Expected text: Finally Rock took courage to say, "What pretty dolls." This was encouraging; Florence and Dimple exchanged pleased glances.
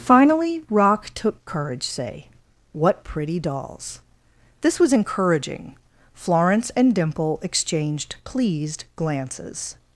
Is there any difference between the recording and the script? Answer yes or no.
yes